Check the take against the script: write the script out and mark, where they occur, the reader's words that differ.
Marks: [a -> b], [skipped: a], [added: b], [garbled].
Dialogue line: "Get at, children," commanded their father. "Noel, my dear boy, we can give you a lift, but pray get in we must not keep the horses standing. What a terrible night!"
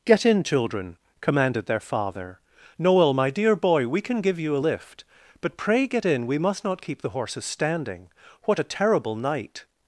"Get [at, -> in] children," commanded their father. "Noel, my dear boy, we can give you a lift, but pray get in we must not keep the horses standing. What a terrible night!"